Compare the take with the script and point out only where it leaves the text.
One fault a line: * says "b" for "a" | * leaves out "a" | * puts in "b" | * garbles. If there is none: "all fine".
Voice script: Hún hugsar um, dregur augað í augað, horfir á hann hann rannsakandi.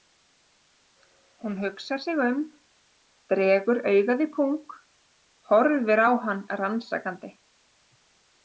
* puts in "sig"
* says "pung" for "augað"
* leaves out "hann"